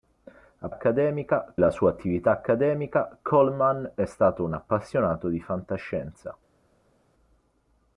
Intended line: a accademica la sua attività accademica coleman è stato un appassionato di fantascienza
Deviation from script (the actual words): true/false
false